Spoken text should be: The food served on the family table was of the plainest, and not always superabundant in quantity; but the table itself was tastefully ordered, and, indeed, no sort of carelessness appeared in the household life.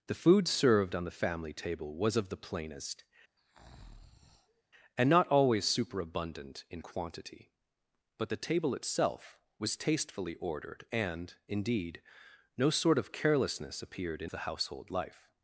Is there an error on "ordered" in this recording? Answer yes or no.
no